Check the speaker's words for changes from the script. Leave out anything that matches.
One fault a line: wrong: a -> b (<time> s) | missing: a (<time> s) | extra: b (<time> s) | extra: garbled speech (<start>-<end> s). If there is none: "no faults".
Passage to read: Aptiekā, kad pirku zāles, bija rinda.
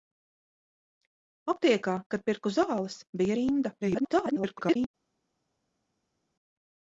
extra: garbled speech (3.8-4.9 s)